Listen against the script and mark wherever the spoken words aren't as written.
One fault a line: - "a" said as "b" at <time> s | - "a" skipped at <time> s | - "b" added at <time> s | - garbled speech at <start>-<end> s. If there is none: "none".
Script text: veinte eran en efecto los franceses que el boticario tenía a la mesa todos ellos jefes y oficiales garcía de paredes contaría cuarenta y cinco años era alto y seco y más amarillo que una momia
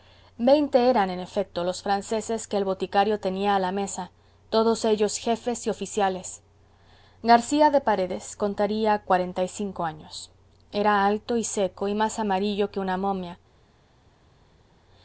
none